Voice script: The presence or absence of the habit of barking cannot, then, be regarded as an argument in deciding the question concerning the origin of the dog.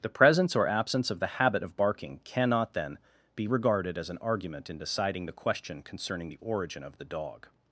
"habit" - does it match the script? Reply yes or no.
yes